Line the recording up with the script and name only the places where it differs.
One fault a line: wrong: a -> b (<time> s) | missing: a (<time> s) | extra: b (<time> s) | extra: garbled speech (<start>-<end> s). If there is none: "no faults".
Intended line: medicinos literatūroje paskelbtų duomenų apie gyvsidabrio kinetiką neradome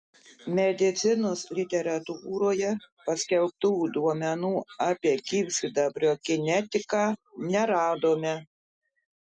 no faults